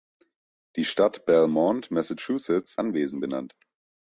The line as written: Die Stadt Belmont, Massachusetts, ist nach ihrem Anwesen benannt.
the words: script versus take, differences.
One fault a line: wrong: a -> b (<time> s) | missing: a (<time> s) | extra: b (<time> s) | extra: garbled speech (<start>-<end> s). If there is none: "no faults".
missing: ist nach ihrem (2.8 s)